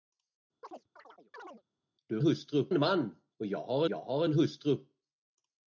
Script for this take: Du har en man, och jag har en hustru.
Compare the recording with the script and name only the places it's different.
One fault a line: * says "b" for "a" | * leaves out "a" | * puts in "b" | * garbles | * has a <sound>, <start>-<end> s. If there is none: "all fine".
* has a chirp, 0.6-1.6 s
* says "hustru" for "har"
* puts in "jag har"